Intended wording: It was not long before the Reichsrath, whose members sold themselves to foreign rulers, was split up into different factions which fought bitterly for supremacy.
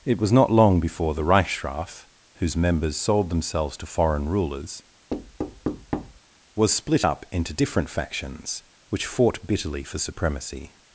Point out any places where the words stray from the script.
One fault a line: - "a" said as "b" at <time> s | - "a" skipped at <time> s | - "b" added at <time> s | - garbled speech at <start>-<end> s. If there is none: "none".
none